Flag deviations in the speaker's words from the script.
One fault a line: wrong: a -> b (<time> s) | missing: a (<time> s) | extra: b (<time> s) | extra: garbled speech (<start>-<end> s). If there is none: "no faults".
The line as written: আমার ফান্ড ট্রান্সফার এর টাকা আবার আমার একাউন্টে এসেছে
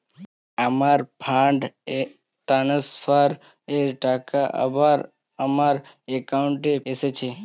no faults